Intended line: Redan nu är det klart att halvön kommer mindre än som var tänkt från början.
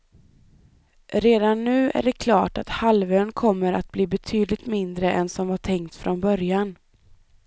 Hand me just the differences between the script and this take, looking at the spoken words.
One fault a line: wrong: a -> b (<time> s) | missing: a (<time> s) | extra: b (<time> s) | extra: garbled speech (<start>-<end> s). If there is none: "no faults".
extra: att bli betydligt (3.7 s)